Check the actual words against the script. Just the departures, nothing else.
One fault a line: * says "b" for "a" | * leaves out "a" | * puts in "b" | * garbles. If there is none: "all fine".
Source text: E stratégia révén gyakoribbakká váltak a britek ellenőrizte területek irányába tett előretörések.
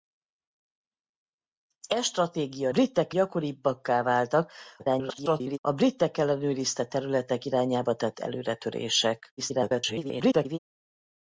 * says "britek" for "révén"
* garbles
* garbles